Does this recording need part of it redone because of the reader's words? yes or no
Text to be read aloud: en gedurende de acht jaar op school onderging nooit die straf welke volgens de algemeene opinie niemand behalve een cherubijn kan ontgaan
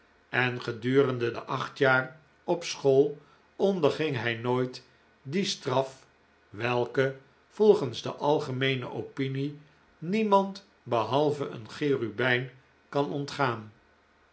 yes